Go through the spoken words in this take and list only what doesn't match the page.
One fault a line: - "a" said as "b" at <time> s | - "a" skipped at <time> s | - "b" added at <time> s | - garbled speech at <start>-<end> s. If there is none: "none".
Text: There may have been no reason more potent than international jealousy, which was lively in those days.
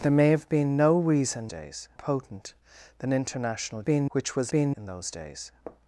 - "more" said as "days" at 1.5 s
- "jealousy" said as "been" at 3.8 s
- "lively" said as "been" at 4.5 s